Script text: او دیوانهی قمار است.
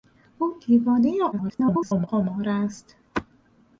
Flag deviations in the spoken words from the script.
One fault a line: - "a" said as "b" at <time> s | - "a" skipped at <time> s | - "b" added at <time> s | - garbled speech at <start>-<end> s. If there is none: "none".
- garbled speech at 1.3-2.1 s